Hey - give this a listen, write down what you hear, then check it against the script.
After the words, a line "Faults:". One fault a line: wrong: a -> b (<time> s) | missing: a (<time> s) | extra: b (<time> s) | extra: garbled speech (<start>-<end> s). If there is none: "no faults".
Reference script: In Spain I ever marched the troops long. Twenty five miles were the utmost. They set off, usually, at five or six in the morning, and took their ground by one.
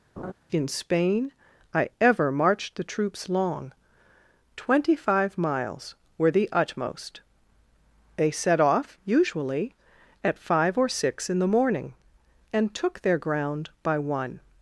In Spain I ever marched the troops long. Twenty five miles were the utmost. They set off, usually, at five or six in the morning, and took their ground by one.
Faults:
no faults